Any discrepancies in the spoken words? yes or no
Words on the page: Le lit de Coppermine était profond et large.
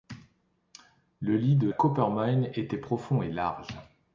no